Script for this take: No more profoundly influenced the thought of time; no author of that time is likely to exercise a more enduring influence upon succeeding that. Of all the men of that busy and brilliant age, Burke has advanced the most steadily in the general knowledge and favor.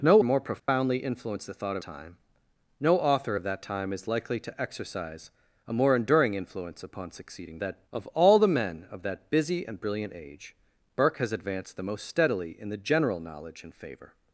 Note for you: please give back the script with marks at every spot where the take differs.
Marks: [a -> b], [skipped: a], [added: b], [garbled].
No more profoundly influenced the thought of time; no author of that time is likely to exercise a more enduring influence upon succeeding that. Of all the men of that busy and brilliant age, Burke has advanced the most steadily in the general knowledge and favor.